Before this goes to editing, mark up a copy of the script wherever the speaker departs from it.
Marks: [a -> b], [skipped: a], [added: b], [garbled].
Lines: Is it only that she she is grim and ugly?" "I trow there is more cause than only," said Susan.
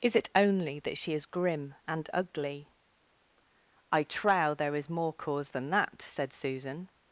Is it only that she [skipped: she] is grim and ugly?" "I trow there is more cause than [only," -> that] said Susan.